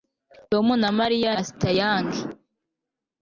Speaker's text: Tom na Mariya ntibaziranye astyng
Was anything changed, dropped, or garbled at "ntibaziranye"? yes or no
yes